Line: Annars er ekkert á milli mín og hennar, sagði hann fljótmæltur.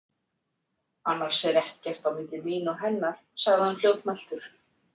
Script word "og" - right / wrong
right